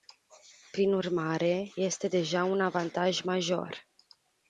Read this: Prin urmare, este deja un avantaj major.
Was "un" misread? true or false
false